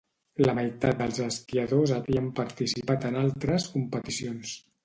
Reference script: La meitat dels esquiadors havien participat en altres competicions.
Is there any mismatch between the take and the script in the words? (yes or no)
no